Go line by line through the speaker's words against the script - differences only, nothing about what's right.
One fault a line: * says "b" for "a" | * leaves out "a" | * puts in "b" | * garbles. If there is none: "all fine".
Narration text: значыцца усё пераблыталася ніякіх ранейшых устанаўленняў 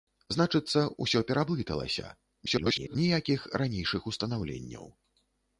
* garbles